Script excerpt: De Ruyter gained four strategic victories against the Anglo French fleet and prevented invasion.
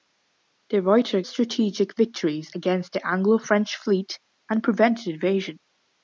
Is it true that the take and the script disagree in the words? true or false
true